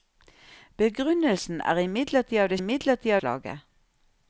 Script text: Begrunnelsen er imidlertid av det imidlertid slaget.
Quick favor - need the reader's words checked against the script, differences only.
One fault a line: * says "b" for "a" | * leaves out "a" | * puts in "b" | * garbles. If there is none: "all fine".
all fine